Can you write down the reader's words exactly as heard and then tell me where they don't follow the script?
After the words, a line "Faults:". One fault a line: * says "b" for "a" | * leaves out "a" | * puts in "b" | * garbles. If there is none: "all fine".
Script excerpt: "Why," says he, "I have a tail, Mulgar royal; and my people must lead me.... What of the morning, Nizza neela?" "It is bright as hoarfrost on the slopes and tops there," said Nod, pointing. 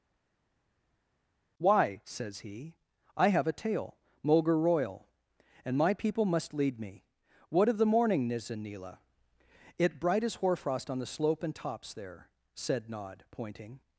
"Why," says he, "I have a tail, Mulgar royal; and my people must lead me.... What of the morning, Nizza neela?" "It bright as hoarfrost on the slope and tops there," said Nod, pointing.
Faults:
* leaves out "is"
* says "slope" for "slopes"